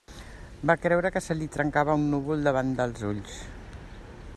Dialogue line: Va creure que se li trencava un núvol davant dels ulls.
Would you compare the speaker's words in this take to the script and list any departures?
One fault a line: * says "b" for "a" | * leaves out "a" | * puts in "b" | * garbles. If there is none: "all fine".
all fine